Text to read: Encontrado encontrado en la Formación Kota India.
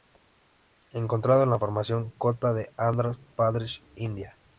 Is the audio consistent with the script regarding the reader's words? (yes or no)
no